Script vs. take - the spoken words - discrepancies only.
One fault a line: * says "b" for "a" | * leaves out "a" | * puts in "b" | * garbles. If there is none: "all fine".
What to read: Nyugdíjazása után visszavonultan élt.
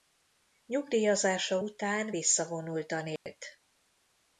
all fine